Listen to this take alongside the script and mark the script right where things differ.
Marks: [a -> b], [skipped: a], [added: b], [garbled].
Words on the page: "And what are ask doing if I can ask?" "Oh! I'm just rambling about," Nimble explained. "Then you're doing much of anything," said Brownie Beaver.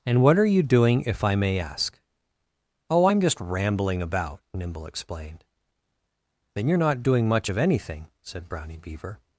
"And what are [ask -> you] doing if I [can -> may] ask?" "Oh! I'm just rambling about," Nimble explained. "Then you're [added: not] doing much of anything," said Brownie Beaver.